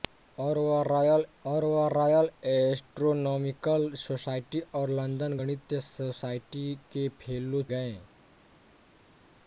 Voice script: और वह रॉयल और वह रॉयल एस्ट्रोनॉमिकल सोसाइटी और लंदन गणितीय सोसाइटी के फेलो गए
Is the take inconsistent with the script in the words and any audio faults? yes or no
no